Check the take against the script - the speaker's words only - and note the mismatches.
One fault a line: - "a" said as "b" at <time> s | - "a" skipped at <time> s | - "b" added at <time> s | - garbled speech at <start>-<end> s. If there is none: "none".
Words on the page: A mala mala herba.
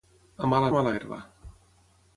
none